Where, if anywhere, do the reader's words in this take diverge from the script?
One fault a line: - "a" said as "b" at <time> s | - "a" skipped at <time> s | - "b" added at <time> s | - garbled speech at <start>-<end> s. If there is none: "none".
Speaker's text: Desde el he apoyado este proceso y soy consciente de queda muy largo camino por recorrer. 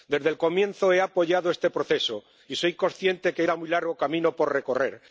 - "comienzo" added at 0.4 s
- "que" added at 3.3 s